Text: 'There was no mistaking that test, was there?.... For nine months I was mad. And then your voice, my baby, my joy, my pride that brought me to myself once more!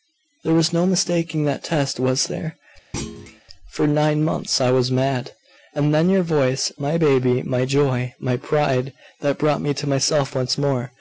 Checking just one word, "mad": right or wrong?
right